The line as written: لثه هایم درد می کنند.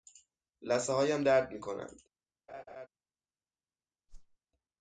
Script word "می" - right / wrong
right